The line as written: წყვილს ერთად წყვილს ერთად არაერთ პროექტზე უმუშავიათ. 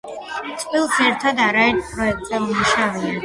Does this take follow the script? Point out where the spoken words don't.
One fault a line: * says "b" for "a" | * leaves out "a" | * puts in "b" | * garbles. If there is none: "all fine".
* leaves out "წყვილს ერთად"